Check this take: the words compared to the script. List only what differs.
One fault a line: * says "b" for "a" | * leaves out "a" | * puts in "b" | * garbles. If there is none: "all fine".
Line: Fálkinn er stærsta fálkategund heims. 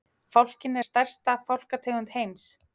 all fine